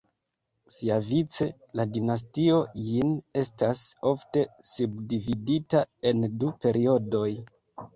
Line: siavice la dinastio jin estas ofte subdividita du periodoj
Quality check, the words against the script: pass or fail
fail